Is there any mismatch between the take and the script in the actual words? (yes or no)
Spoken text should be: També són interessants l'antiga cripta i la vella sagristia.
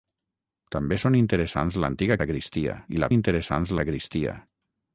yes